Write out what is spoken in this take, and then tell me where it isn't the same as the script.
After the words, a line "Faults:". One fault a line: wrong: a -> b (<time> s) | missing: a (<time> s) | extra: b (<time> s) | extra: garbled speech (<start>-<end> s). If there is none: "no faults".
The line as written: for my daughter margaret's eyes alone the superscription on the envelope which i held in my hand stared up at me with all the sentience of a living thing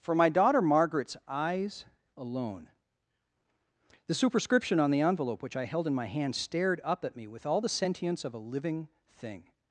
for my daughter margaret's eyes alone the superscription on the envelope which i held in my hand stared up at me with all the sentience of a living thing
Faults:
no faults